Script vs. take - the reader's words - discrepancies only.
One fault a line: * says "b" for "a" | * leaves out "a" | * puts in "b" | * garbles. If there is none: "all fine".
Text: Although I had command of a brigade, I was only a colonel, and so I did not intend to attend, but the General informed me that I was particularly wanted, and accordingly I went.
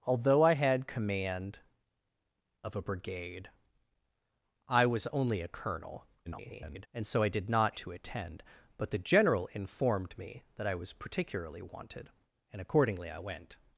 * garbles
* leaves out "intend"